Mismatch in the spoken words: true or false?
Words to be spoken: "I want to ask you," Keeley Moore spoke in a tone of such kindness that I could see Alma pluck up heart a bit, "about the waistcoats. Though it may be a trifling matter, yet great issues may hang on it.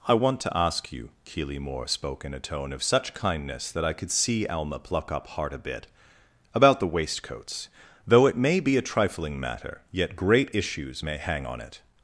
false